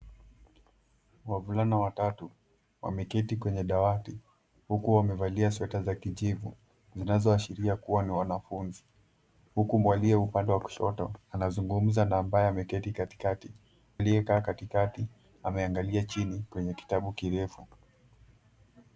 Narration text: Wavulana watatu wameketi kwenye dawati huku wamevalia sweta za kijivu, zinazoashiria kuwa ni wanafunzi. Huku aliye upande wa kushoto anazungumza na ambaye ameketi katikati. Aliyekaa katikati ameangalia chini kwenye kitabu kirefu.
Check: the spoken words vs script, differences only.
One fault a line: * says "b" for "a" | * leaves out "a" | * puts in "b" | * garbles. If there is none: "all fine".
all fine